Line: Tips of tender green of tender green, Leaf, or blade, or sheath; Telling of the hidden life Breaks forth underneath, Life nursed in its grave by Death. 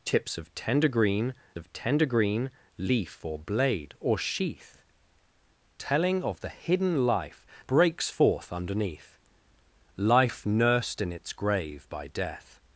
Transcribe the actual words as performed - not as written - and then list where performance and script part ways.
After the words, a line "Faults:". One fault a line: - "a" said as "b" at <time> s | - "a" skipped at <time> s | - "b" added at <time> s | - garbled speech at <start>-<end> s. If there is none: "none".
Tips of tender green of tender green, Leaf, or blade, or sheath; Telling of the hidden life Breaks forth underneath, Life nursed in its grave by Death.
Faults:
none